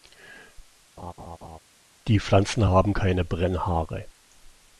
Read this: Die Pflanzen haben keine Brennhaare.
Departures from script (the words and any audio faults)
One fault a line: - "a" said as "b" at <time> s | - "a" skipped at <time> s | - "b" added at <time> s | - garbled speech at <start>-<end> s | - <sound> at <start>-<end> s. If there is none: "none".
- laugh at 1.0-1.6 s